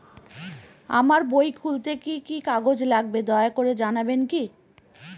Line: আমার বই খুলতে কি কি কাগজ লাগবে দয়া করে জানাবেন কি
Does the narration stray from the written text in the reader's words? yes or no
no